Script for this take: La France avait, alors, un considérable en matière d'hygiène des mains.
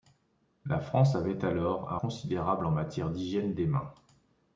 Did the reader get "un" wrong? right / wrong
right